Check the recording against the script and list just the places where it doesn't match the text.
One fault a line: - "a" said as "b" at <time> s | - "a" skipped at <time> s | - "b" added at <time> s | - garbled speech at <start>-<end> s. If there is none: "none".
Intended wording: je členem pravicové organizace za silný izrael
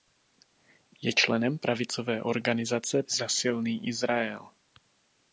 none